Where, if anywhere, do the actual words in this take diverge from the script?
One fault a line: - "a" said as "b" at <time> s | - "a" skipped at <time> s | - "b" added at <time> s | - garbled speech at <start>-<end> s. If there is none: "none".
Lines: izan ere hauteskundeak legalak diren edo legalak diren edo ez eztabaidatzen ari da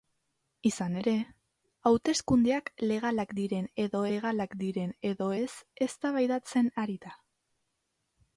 none